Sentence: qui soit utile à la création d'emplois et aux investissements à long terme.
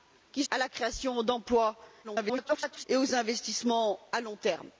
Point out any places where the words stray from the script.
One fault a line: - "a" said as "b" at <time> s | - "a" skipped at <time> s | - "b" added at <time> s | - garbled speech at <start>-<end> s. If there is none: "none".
- "soit utile" skipped at 0.4 s
- garbled speech at 2.0-2.8 s